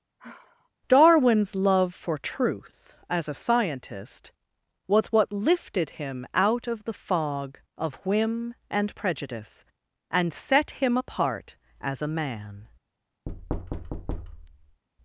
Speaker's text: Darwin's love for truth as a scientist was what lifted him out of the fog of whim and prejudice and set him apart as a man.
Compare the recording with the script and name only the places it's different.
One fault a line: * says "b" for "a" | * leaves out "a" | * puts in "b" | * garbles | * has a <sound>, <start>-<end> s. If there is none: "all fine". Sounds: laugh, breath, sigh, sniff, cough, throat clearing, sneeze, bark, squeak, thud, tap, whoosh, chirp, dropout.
* has a sigh, 0.2-0.7 s
* has a thud, 13.3-14.8 s